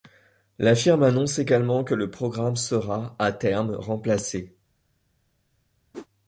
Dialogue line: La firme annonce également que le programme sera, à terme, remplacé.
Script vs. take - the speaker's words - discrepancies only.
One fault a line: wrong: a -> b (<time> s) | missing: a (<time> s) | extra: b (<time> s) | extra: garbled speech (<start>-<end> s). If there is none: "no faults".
no faults